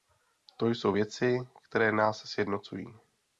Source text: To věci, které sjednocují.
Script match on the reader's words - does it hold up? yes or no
no